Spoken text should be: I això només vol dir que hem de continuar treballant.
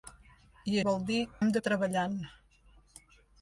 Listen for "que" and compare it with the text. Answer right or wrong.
wrong